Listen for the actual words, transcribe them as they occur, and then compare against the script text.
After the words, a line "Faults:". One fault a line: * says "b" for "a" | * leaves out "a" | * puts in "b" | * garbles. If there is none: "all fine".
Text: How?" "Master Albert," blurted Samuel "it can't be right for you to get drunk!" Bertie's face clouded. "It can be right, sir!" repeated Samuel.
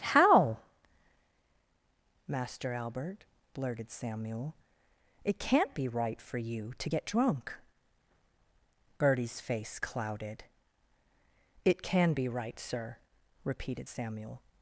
How?" "Master Albert," blurted Samuel "it can't be right for you to get drunk!" Bertie's face clouded. "It can be right, sir!" repeated Samuel.
Faults:
all fine